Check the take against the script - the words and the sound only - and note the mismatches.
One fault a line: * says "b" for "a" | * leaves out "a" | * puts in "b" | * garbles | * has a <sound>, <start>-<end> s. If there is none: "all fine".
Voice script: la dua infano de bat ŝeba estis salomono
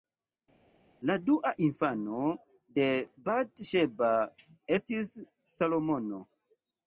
all fine